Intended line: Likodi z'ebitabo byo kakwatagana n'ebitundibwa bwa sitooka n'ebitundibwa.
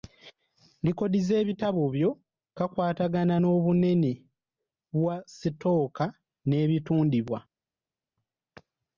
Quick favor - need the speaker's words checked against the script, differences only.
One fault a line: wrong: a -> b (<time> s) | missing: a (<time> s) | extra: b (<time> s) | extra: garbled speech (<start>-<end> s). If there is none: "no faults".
wrong: n'ebitundibwa -> n'obunene (3.4 s)